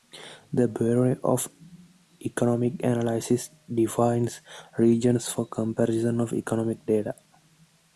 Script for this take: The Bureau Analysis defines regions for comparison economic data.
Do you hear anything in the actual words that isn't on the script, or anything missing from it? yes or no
yes